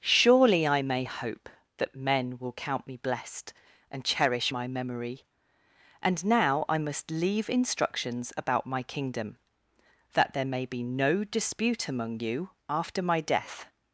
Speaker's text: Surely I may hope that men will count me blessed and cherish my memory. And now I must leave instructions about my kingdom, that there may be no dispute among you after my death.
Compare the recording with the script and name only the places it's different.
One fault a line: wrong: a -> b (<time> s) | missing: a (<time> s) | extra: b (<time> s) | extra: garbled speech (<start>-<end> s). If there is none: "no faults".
no faults